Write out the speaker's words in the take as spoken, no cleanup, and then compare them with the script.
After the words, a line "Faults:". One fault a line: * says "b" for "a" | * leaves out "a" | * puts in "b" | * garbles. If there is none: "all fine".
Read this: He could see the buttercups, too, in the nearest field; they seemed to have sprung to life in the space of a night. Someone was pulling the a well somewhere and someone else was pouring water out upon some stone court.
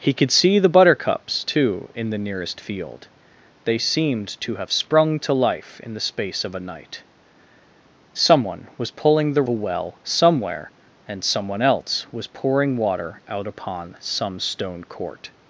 He could see the buttercups, too, in the nearest field; they seemed to have sprung to life in the space of a night. Someone was pulling the a well somewhere and someone else was pouring water out upon some stone court.
Faults:
all fine